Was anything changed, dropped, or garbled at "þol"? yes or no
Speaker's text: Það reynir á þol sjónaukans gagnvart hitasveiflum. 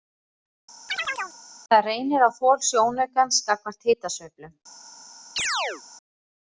no